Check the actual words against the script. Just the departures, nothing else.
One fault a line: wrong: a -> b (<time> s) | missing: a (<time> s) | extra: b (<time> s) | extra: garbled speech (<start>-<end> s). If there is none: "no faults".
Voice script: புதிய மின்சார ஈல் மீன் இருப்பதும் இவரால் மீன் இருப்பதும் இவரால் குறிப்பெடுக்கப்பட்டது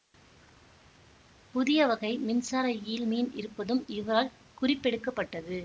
extra: வகை (1.9 s)
missing: மீன் இருப்பதும் இவரால் (4.3 s)